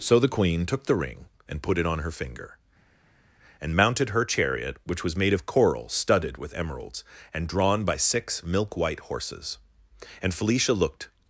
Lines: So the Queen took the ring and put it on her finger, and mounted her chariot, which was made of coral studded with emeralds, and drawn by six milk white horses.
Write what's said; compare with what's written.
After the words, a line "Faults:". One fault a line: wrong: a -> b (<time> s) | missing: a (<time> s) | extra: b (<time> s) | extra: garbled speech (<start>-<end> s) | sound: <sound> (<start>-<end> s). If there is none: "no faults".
So the Queen took the ring and put it on her finger, and mounted her chariot, which was made of coral studded with emeralds, and drawn by six milk white horses. And Felicia looked
Faults:
extra: And Felicia looked (10.2 s)